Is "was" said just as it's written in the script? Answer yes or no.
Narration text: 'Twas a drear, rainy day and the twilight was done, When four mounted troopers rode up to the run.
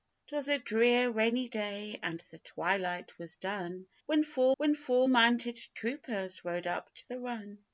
yes